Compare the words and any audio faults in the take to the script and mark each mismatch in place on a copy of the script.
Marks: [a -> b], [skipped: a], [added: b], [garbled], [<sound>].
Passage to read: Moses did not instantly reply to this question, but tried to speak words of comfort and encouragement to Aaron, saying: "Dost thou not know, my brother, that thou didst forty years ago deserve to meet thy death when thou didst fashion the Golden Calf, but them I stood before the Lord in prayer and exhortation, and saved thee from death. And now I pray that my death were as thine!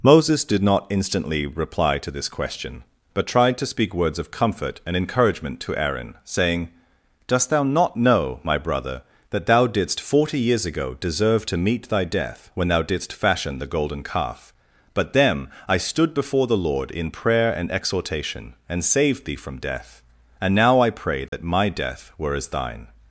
Moses did not instantly reply to this question, but tried to speak words of comfort and encouragement to Aaron, saying: "Dost thou not know, my brother, that thou didst forty years ago deserve to meet thy death when thou didst fashion the Golden Calf, but them I stood before the Lord in prayer and exhortation, and saved thee from death. And now I pray that [dropout] my death were as thine!